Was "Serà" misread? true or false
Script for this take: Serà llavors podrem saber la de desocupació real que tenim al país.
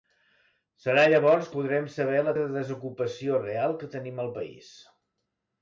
false